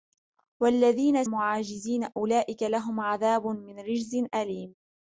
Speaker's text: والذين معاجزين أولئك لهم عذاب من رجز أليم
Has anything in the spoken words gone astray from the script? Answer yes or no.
no